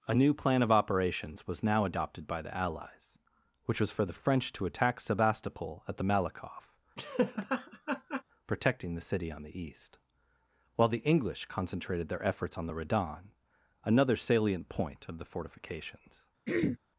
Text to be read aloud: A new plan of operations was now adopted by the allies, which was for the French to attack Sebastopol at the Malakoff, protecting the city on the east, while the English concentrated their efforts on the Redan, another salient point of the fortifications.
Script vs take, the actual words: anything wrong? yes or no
no